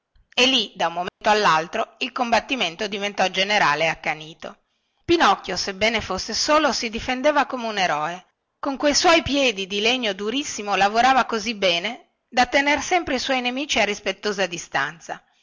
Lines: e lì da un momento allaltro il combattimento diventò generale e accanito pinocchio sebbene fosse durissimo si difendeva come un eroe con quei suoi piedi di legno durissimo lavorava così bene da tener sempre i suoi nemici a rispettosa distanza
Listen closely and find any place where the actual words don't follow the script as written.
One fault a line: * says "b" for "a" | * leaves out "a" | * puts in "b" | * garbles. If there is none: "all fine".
* says "solo" for "durissimo"